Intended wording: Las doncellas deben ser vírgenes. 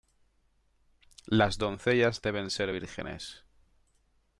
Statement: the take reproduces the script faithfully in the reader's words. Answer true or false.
true